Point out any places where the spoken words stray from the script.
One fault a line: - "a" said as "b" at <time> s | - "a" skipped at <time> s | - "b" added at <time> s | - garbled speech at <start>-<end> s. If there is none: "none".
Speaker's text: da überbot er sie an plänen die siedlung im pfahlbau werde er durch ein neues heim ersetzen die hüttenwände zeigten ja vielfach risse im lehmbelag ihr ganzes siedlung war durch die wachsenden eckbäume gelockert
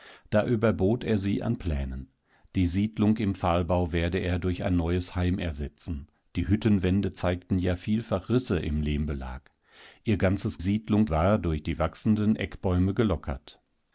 none